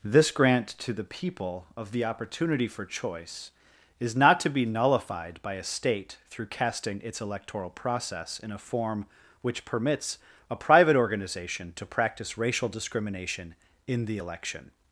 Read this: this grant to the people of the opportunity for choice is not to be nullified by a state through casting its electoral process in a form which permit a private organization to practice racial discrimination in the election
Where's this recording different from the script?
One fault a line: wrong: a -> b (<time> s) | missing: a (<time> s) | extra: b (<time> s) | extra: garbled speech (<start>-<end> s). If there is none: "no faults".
wrong: permit -> permits (9.6 s)